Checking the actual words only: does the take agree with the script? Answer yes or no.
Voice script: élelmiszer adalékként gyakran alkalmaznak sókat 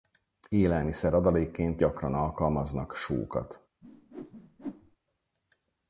yes